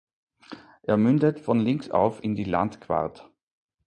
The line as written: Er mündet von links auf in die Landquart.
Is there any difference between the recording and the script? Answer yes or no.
no